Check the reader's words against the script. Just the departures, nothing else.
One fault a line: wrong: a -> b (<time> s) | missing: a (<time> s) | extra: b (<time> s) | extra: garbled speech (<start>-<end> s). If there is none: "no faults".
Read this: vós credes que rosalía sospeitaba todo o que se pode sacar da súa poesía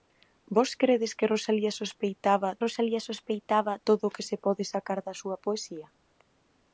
extra: rosalía sospeitaba (2.6 s)